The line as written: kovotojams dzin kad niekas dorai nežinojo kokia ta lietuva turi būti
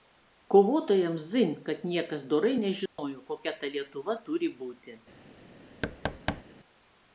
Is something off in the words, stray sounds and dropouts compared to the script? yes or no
yes